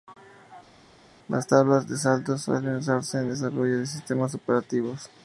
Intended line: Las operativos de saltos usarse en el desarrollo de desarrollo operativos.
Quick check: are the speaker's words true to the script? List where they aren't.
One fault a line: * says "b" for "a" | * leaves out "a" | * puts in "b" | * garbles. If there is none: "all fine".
* says "tablas" for "operativos"
* puts in "suelen"
* says "sistemas" for "desarrollo"